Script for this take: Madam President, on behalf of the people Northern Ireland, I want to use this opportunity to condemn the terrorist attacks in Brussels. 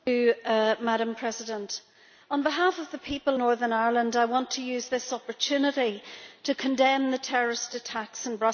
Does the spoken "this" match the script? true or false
true